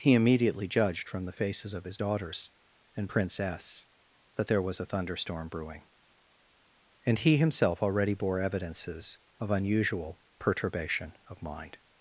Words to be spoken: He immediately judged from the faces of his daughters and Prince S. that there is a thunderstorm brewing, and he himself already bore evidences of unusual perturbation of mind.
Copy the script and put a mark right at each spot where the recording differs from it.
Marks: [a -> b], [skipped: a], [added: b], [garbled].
He immediately judged from the faces of his daughters and Prince S. that there [is -> was] a thunderstorm brewing, and he himself already bore evidences of unusual perturbation of mind.